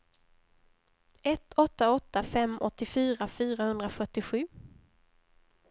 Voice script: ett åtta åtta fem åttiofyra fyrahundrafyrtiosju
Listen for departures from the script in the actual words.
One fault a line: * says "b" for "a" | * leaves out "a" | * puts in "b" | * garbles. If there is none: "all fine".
all fine